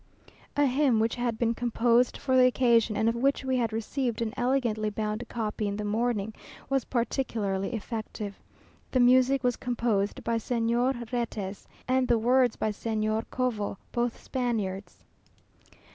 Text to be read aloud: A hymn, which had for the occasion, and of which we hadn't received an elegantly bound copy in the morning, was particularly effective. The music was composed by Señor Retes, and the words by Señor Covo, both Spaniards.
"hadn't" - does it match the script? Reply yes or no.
no